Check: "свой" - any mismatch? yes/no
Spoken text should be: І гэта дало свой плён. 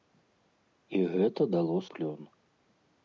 yes